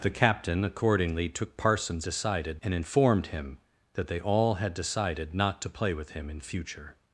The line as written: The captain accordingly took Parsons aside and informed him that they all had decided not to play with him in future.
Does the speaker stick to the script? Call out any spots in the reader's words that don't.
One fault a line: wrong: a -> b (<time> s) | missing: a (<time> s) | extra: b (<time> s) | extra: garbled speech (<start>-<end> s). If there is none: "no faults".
wrong: aside -> decided (2.0 s)